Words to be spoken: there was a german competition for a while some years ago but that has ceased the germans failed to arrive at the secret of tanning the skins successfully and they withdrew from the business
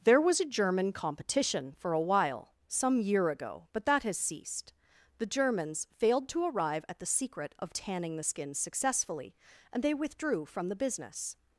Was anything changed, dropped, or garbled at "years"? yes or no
yes